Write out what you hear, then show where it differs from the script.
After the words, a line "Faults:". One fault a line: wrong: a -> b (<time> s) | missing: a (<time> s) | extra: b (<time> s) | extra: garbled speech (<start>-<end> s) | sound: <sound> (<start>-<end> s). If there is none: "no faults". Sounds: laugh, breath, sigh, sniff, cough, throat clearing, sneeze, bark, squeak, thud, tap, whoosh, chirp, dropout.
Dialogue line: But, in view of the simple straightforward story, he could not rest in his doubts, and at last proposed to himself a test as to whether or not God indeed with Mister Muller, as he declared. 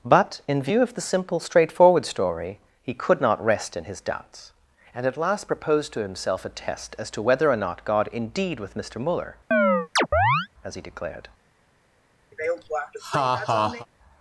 But, in view of the simple straightforward story, he could not rest in his doubts, and at last proposed to himself a test as to whether or not God indeed with Mister Muller, as he declared.
Faults:
sound: chirp (9.5-10.5 s)
sound: laugh (12.3-13.9 s)